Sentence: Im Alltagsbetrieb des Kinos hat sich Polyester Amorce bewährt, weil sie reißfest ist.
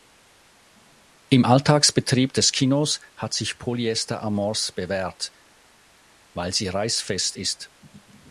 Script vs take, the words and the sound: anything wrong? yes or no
no